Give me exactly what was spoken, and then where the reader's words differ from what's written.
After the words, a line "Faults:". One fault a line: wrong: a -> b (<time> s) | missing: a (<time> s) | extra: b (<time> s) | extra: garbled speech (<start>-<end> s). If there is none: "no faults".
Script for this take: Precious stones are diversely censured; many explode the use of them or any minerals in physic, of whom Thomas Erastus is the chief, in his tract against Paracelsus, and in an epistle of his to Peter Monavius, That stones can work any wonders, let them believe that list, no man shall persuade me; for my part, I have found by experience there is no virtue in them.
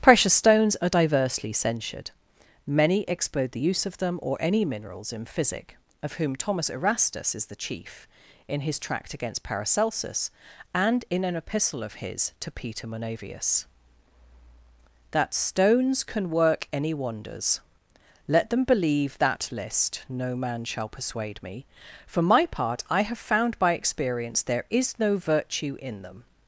Precious stones are diversely censured; many explode the use of them or any minerals in physic, of whom Thomas Erastus is the chief, in his tract against Paracelsus, and in an epistle of his to Peter Monavius, That stones can work any wonders, let them believe that list, no man shall persuade me; for my part, I have found by experience there is no virtue in them.
Faults:
no faults